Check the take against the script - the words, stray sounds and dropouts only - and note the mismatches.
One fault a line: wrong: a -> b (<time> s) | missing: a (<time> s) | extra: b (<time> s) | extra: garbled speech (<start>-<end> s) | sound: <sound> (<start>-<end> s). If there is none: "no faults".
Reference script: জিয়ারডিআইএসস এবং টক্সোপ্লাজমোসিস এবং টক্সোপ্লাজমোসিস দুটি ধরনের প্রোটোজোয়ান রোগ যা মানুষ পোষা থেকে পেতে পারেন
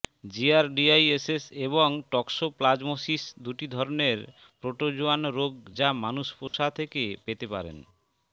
missing: এবং টক্সোপ্লাজমোসিস (3.2 s)
sound: dropout (6.5-6.5 s)